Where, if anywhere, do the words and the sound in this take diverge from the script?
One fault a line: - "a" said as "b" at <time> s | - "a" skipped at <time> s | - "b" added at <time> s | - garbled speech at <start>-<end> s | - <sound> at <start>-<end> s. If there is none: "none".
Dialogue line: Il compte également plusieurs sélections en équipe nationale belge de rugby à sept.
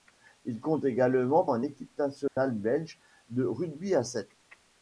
- "plusieurs sélections" skipped at 1.4 s
- dropout at 2.3-2.4 s